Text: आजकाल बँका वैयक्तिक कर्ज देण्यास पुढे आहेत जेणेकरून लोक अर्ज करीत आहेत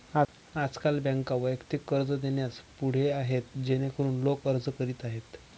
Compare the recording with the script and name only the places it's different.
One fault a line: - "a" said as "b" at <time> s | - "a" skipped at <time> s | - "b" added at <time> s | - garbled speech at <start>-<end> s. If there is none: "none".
none